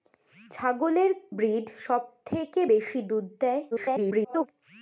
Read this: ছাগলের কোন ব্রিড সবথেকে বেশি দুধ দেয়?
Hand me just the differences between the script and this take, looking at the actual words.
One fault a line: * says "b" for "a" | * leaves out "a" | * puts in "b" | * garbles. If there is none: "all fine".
* leaves out "কোন"
* garbles